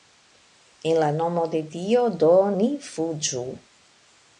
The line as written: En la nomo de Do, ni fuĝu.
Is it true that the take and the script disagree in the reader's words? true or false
true